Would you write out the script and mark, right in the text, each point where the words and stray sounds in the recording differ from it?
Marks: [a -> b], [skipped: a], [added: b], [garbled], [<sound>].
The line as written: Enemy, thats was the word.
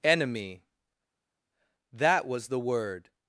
Enemy, [thats -> that] was the word.